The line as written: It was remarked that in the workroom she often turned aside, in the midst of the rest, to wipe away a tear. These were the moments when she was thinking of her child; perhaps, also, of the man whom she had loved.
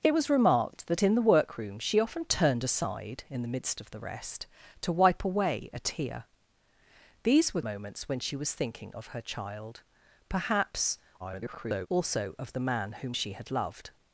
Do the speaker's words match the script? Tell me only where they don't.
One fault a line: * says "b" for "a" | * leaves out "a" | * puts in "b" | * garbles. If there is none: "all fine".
* leaves out "the"
* garbles